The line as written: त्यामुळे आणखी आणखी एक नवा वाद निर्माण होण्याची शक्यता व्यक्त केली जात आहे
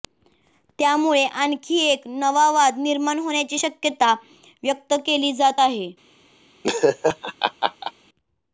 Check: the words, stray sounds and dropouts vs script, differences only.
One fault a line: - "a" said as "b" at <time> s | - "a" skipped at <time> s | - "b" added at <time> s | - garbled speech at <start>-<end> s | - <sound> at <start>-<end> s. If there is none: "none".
- "आणखी" skipped at 1.8 s
- laugh at 6.6-7.9 s